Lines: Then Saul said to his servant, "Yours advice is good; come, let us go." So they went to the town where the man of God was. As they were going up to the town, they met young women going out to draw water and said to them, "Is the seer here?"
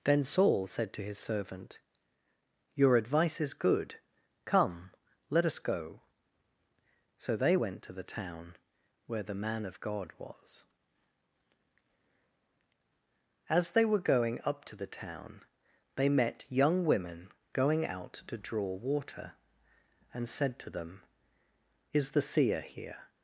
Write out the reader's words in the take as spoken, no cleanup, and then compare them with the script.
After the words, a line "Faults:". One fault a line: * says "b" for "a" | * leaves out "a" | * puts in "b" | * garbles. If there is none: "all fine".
Then Saul said to his servant, "Your advice is good; come, let us go." So they went to the town where the man of God was. As they were going up to the town, they met young women going out to draw water and said to them, "Is the seer here?"
Faults:
* says "Your" for "Yours"